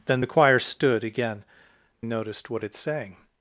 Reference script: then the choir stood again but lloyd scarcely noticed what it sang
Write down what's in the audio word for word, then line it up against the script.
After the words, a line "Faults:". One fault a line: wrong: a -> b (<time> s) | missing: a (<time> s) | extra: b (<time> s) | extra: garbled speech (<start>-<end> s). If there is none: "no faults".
then the choir stood again noticed what it sang
Faults:
missing: but lloyd scarcely (1.4 s)